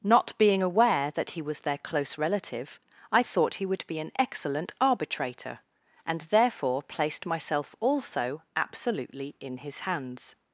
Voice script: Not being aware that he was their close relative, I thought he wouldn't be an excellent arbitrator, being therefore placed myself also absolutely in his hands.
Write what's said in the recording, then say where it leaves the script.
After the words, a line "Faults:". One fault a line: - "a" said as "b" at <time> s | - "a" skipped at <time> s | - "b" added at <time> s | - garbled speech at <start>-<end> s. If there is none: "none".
Not being aware that he was their close relative, I thought he would be an excellent arbitrator, and therefore placed myself also absolutely in his hands.
Faults:
- "wouldn't" said as "would" at 3.7 s
- "being" said as "and" at 6.1 s